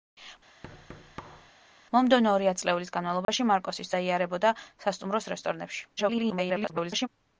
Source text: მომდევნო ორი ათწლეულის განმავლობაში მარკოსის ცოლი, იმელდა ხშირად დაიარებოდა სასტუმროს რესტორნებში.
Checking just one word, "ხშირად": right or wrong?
wrong